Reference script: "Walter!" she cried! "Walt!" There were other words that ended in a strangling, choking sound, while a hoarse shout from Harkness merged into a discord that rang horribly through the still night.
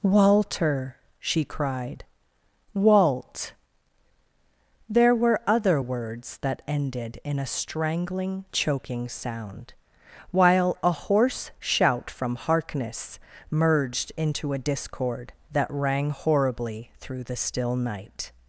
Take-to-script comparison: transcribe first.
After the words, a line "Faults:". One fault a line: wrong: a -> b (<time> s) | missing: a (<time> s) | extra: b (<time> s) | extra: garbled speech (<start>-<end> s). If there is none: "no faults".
"Walter!" she cried! "Walt!" There were other words that ended in a strangling, choking sound, while a hoarse shout from Harkness merged into a discord that rang horribly through the still night.
Faults:
no faults